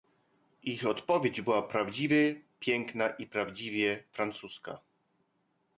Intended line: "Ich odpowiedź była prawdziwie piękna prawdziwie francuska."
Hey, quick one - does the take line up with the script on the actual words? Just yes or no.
no